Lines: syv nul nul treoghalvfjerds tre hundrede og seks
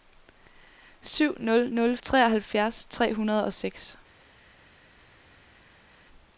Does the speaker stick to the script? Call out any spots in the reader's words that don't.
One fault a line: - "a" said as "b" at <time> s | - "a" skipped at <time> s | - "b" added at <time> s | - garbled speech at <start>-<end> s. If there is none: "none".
none